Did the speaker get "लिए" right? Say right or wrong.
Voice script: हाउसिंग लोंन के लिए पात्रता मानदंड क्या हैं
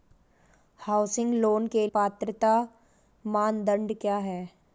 wrong